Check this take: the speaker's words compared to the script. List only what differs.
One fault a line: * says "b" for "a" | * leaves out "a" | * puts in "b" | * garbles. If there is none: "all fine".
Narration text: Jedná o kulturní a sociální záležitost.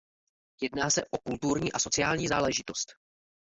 * puts in "se"